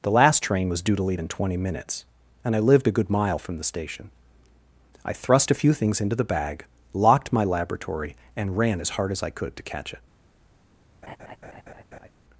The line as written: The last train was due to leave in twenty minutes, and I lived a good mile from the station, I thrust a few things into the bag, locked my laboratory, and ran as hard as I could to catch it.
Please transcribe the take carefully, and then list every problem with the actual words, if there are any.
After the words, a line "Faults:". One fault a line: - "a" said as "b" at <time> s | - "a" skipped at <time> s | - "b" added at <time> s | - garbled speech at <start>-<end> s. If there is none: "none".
The last train was due to leave in twenty minutes, and I lived a good mile from the station, I thrust a few things into the bag, locked my laboratory, and ran as hard as I could to catch it.
Faults:
none